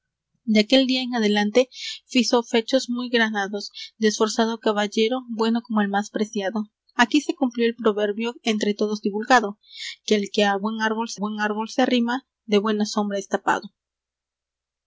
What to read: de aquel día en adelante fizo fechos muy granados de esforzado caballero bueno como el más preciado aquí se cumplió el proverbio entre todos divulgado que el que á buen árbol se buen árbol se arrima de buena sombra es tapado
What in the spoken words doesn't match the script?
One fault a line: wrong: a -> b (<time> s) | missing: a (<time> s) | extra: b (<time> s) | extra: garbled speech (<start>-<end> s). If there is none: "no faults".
no faults